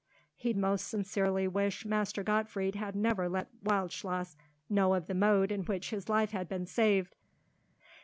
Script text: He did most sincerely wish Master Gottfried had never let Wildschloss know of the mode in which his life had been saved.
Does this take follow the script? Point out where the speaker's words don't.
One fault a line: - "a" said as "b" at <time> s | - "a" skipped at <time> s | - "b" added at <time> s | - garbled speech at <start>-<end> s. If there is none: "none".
- "did" skipped at 0.5 s